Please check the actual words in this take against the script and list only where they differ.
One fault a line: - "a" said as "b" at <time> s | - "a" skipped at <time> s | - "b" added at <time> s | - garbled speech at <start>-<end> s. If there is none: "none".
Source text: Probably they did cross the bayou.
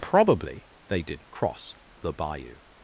none